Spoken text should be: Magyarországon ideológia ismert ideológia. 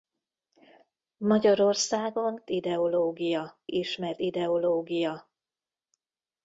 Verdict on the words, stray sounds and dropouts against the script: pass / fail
pass